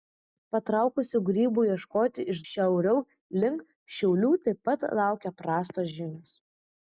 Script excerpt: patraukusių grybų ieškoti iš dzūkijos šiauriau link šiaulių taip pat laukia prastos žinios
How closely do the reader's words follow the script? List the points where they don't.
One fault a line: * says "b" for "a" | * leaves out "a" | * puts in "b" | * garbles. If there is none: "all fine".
* leaves out "dzūkijos"